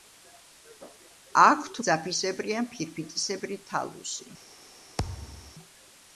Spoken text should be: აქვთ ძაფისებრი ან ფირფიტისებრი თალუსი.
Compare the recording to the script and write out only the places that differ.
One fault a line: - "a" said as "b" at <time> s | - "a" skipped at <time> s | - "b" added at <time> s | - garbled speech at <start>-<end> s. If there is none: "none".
none